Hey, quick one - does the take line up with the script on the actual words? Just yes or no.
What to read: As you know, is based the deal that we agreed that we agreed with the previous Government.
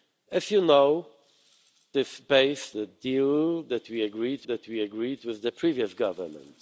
yes